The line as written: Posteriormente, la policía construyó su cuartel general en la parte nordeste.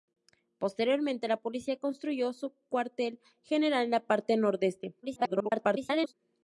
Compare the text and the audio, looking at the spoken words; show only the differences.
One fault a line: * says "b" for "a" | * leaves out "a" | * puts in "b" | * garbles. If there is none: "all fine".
* garbles